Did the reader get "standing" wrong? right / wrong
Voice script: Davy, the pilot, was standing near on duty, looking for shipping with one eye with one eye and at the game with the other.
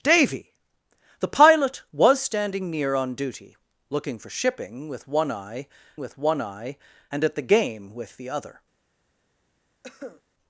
right